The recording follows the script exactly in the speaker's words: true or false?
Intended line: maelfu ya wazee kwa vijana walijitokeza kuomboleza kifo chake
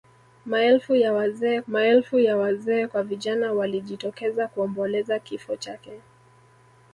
false